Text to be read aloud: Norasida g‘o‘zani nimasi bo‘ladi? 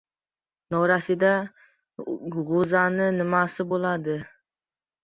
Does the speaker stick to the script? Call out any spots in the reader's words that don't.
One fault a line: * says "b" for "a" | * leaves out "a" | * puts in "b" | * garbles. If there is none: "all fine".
all fine